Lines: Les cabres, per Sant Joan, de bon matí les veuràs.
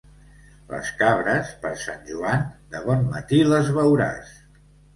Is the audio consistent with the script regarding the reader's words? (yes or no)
yes